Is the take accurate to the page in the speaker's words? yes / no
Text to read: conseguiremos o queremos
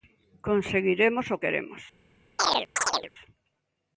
yes